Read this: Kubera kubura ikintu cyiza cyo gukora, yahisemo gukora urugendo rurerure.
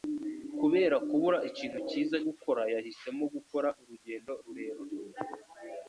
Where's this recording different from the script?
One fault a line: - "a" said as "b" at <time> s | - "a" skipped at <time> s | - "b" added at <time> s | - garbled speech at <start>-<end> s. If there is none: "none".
- "cyo" skipped at 2.2 s